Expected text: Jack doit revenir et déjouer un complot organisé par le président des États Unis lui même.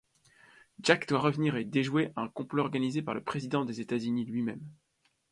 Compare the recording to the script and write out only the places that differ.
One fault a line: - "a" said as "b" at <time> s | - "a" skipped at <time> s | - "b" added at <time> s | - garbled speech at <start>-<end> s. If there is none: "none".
none